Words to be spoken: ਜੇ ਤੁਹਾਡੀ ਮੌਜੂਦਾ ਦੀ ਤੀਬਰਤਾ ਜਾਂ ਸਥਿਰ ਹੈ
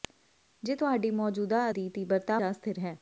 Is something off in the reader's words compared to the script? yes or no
no